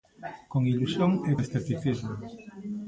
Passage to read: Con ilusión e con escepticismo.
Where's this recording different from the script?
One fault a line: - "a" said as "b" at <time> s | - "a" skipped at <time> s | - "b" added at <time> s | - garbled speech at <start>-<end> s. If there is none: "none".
- "con" skipped at 1.3 s